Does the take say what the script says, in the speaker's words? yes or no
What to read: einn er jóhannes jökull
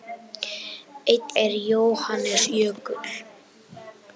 yes